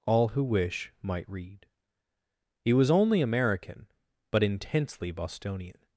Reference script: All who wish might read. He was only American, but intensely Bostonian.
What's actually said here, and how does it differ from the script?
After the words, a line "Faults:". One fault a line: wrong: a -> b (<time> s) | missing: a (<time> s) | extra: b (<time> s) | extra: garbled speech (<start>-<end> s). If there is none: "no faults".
All who wish might read. He was only American, but intensely Bostonian.
Faults:
no faults